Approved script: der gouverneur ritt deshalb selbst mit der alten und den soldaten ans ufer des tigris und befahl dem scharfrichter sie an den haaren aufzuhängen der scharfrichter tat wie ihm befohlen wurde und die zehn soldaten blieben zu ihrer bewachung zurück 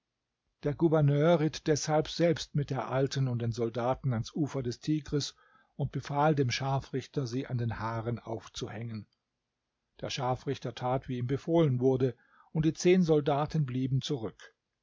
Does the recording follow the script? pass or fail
fail